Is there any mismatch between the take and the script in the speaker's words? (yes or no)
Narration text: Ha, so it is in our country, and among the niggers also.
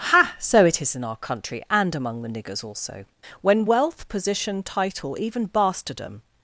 yes